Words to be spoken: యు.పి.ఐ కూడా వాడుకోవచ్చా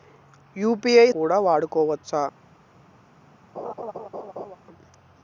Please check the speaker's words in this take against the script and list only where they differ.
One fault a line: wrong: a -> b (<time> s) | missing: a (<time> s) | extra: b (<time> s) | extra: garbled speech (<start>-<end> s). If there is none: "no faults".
no faults